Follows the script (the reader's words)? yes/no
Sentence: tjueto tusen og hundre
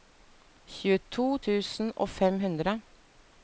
no